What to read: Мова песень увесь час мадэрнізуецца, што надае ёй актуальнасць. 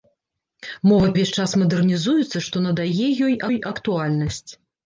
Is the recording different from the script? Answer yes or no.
yes